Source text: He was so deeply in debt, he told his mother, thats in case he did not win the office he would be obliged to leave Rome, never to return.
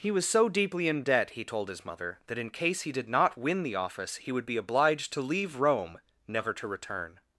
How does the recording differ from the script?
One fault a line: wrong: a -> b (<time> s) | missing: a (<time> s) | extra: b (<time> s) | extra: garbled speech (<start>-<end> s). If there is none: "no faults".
wrong: thats -> that (2.2 s)